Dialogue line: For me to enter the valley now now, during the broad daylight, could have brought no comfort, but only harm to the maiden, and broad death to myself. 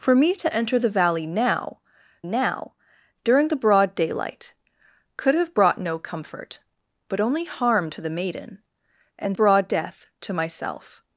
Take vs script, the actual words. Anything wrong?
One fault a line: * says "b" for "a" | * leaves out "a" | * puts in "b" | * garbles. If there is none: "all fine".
all fine